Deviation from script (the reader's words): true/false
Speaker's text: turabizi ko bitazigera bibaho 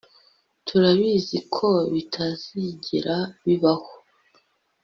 false